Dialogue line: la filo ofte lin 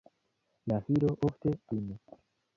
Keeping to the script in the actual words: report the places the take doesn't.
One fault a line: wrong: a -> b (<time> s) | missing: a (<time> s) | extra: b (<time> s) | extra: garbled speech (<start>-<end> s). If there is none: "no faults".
no faults